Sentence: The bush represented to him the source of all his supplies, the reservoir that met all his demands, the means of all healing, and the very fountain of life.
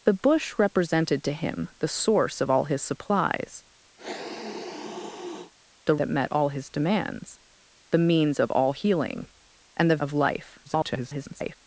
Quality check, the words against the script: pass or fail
fail